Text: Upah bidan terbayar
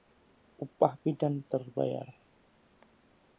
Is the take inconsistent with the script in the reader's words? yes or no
no